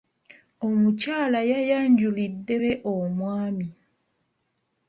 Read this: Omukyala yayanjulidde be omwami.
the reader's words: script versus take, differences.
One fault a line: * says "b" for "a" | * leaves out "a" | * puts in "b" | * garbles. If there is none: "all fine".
all fine